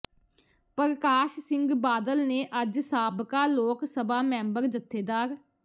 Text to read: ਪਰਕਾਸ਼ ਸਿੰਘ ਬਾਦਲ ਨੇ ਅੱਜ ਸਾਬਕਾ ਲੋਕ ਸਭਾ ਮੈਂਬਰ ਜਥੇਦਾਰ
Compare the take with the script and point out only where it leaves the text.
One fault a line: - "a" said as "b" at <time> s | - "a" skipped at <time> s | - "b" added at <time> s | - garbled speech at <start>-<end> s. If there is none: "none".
none